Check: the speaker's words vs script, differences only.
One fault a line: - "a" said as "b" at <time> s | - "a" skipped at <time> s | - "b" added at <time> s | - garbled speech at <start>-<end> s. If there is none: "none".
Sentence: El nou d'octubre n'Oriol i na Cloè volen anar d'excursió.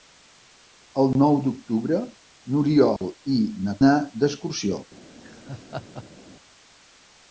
- "Cloè volen" skipped at 3.8 s